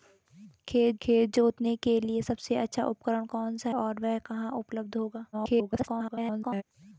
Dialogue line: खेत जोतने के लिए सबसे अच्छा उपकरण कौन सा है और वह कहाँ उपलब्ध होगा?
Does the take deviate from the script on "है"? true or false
true